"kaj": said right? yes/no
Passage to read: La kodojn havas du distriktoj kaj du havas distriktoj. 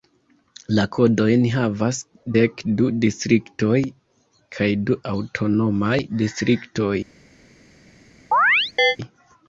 yes